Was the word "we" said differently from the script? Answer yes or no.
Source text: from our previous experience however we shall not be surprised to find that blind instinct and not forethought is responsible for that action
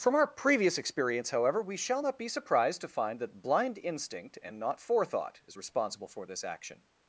no